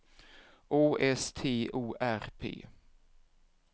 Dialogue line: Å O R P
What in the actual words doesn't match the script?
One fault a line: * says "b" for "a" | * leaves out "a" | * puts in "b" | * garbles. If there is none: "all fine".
* puts in "S T"